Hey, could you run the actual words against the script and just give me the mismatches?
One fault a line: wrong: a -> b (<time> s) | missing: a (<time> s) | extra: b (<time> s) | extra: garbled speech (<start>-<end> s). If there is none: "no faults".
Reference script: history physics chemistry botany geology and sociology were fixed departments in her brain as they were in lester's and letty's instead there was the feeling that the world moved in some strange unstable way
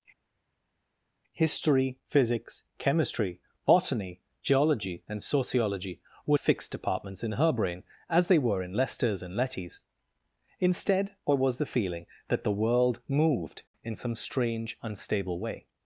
no faults